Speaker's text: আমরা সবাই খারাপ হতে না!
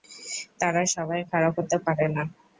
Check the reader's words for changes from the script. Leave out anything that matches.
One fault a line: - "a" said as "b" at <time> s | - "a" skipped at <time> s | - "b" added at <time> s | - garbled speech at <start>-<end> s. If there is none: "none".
- "আমরা" said as "তারা" at 0.6 s
- "পারে" added at 1.9 s